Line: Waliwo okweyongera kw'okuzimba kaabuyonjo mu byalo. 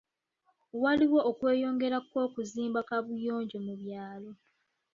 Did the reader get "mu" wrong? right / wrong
right